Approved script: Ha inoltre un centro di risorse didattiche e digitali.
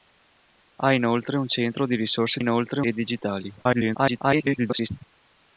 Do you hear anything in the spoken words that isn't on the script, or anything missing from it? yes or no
yes